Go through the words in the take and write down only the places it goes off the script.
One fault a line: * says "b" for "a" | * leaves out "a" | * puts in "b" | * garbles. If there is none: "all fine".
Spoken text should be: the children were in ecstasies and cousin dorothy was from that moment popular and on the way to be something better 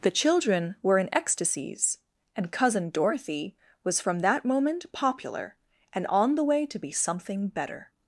all fine